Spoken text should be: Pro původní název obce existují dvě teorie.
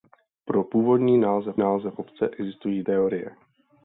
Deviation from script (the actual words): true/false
true